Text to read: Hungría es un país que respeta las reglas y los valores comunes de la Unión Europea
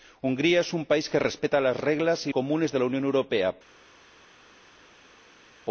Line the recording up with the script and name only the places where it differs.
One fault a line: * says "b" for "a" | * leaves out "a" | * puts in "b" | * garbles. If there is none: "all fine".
* leaves out "los valores"